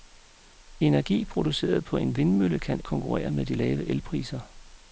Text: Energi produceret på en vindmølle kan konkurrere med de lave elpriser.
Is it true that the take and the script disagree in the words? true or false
false